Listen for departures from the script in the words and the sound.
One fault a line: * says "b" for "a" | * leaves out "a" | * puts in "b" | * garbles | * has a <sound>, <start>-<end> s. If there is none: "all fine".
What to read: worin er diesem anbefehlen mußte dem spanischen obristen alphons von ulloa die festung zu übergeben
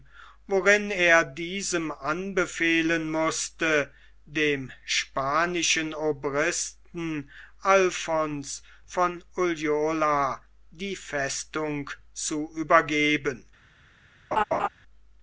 * has a laugh, 14.3-14.7 s